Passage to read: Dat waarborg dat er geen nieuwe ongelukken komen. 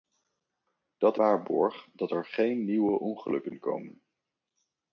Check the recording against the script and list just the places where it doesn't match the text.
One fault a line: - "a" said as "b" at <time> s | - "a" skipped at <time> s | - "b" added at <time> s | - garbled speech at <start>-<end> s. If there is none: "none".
none